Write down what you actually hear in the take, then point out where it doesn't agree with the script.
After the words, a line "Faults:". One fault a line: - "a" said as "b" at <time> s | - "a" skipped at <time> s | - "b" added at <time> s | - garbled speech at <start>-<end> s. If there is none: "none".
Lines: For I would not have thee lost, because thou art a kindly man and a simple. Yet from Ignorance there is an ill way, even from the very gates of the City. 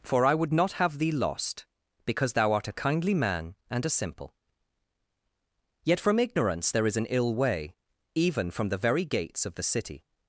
For I would not have thee lost, because thou art a kindly man and a simple. Yet from Ignorance there is an ill way, even from the very gates of the City.
Faults:
none